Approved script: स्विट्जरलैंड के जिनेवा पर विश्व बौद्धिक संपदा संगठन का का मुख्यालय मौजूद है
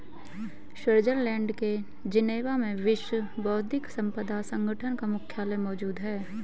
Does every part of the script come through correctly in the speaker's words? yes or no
no